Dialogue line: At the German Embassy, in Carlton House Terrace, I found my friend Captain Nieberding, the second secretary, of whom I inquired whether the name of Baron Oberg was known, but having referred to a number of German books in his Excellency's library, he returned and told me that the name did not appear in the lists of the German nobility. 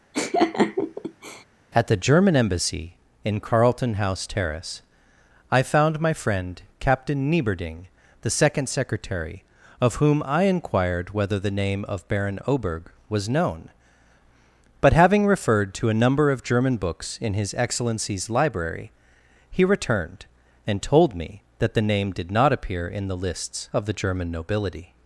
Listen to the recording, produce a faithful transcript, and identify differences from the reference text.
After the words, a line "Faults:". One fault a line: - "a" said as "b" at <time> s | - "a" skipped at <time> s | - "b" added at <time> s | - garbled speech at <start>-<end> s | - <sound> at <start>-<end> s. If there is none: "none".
At the German Embassy, in Carlton House Terrace, I found my friend Captain Nieberding, the second secretary, of whom I inquired whether the name of Baron Oberg was known, but having referred to a number of German books in his Excellency's library, he returned and told me that the name did not appear in the lists of the German nobility.
Faults:
- laugh at 0.1-1.4 s